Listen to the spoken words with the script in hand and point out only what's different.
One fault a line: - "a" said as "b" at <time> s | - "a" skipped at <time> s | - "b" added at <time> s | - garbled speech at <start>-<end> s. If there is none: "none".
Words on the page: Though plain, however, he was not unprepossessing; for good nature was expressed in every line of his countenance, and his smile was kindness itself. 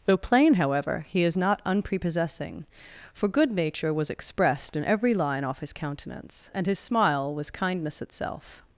- "was" said as "is" at 1.2 s
- "of" said as "off" at 5.4 s